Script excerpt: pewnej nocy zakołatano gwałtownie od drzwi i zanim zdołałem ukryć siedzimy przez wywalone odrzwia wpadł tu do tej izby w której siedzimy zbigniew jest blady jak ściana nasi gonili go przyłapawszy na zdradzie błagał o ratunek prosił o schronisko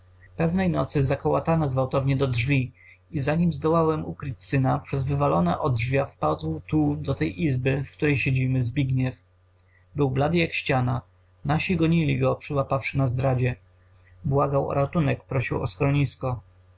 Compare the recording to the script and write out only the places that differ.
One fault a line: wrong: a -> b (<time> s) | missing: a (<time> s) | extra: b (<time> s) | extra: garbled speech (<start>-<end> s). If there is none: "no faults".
wrong: od -> do (2.2 s)
wrong: siedzimy -> syna (4.4 s)
wrong: jest -> był (9.9 s)